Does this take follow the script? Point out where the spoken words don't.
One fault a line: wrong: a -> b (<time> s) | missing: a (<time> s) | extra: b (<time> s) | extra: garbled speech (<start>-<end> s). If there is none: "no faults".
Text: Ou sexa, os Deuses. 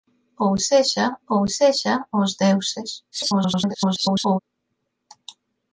extra: ou sexa (1.3 s)
extra: garbled speech (3.1-4.4 s)